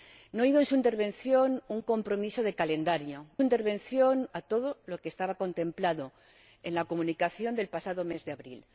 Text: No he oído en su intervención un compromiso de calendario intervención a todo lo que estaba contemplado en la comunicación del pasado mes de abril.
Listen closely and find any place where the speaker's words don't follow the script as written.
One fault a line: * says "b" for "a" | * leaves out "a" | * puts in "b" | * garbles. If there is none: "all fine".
all fine